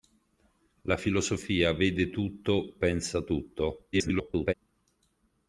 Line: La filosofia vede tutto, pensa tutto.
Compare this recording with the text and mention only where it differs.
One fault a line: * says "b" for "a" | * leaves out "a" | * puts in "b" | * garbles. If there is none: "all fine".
* garbles